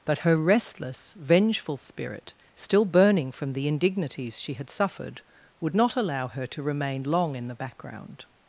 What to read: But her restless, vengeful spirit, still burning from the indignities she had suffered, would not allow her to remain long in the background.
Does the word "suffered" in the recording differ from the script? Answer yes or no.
no